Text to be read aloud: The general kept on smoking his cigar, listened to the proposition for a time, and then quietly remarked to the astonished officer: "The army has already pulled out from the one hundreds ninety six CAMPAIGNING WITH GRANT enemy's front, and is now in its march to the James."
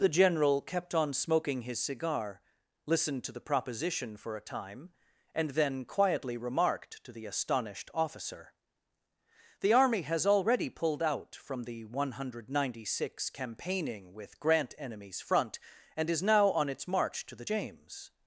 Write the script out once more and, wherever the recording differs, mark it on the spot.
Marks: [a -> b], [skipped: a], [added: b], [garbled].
The general kept on smoking his cigar, listened to the proposition for a time, and then quietly remarked to the astonished officer: "The army has already pulled out from the one [hundreds -> hundred] ninety six CAMPAIGNING WITH GRANT enemy's front, and is now [in -> on] its march to the James."